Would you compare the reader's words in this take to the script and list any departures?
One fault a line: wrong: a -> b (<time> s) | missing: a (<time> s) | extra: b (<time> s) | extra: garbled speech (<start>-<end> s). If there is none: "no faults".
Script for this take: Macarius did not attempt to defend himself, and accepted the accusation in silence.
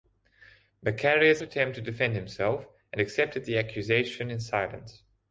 missing: did not (1.4 s)